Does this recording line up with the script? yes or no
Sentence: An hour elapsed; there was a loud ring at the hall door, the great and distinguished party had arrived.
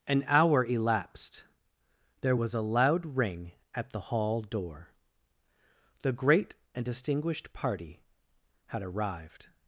yes